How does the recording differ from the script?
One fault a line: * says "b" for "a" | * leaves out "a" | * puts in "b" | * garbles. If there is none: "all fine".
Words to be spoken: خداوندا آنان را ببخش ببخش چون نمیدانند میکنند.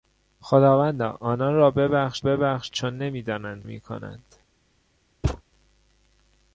all fine